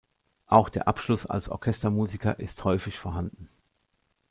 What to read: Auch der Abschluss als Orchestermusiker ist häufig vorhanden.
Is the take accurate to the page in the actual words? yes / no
yes